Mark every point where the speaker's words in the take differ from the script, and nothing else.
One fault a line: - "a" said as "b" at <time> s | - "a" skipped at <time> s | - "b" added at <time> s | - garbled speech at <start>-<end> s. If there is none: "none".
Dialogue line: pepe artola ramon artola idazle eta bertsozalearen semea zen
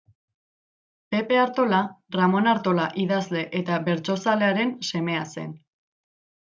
none